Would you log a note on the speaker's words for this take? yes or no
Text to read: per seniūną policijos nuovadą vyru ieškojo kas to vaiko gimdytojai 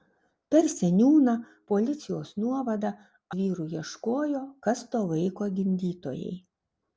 no